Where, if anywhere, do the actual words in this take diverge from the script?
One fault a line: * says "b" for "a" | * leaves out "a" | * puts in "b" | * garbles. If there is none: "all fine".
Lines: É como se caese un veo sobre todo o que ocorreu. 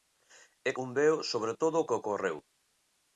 * leaves out "como se caese"